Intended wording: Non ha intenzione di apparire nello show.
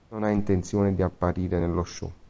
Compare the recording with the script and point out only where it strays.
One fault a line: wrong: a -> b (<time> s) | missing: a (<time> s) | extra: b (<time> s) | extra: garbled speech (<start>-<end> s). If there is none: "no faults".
no faults